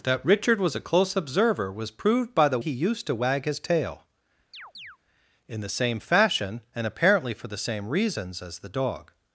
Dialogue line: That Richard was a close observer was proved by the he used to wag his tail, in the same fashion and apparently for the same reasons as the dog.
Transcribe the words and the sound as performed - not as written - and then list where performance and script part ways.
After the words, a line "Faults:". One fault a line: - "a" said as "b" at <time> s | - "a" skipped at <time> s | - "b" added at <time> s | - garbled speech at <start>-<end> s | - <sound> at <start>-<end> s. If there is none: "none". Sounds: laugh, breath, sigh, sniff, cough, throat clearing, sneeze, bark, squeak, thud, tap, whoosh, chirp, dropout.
That Richard was a close observer was proved by the he used to wag his tail, in the same fashion and apparently for the same reasons as the dog.
Faults:
- chirp at 4.5-5.0 s